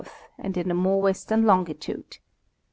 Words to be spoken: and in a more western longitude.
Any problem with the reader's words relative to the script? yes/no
no